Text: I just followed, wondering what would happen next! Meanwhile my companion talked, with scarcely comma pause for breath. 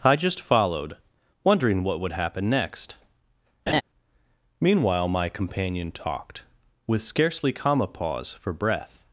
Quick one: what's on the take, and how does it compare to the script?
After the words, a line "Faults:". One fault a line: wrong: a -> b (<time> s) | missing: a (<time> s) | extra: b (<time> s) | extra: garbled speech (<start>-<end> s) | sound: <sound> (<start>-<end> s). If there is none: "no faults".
I just followed, wondering what would happen next! Meanwhile my companion talked, with scarcely comma pause for breath.
Faults:
sound: laugh (3.7-3.8 s)